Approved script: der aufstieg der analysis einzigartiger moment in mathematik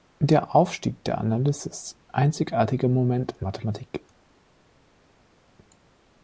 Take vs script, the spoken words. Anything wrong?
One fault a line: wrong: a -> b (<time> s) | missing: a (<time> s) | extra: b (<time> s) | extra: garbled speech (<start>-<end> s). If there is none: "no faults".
no faults